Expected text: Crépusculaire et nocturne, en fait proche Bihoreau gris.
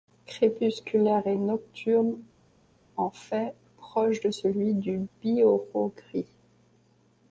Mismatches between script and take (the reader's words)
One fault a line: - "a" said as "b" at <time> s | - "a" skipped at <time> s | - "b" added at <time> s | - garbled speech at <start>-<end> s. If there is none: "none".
- "de celui du" added at 4.2 s